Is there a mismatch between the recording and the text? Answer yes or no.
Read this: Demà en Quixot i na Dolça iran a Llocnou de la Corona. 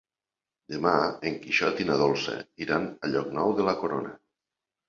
no